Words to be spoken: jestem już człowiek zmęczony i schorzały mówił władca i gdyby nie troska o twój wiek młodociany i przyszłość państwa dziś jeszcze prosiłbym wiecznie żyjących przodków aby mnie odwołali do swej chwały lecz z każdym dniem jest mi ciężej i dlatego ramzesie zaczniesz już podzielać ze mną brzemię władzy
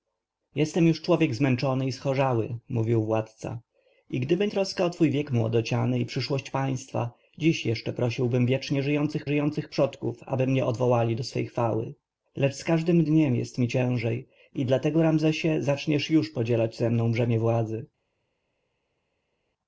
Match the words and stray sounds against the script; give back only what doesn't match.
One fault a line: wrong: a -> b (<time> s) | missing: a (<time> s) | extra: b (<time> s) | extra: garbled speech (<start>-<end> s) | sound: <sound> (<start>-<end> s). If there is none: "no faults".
missing: nie (4.5 s)
extra: żyjących (9.2 s)